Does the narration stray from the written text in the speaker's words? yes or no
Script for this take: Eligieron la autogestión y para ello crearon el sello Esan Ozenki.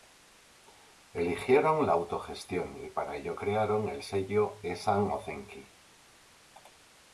no